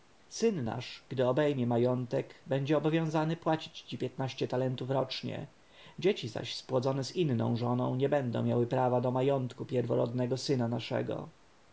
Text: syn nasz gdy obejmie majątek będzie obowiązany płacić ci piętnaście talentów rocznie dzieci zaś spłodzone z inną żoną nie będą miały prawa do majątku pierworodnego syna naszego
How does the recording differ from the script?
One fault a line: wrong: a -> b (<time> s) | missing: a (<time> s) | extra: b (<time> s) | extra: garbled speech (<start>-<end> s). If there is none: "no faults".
no faults